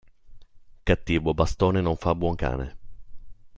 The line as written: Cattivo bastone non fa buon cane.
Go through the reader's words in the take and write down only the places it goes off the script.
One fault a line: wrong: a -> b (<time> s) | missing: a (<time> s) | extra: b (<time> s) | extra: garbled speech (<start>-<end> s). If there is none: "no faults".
no faults